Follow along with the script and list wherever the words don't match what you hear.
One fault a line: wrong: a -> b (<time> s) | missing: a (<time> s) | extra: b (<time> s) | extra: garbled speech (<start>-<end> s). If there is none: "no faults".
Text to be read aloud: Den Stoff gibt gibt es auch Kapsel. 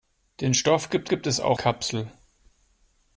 no faults